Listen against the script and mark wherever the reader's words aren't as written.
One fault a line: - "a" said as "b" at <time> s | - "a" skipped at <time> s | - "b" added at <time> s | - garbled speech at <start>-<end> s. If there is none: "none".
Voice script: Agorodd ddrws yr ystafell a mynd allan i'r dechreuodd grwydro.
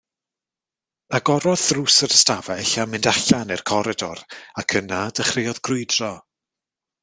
- "coridor ac yna" added at 3.7 s